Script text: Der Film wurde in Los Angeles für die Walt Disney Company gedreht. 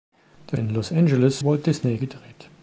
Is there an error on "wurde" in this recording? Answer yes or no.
yes